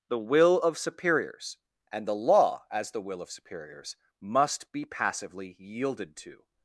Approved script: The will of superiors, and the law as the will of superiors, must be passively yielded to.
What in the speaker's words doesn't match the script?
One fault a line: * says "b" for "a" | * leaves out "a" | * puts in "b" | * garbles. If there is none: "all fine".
all fine